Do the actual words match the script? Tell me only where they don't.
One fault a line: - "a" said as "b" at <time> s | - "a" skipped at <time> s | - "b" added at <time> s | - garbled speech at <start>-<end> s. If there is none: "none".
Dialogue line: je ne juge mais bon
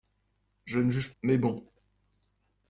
none